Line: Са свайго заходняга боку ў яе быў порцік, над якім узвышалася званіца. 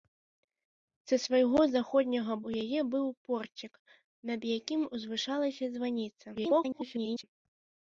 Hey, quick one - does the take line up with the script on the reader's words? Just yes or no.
no